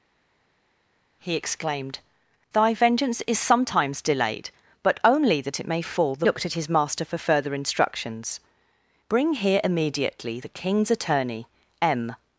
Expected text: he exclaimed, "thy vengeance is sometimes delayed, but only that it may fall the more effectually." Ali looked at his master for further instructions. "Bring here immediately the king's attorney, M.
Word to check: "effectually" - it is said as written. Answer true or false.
false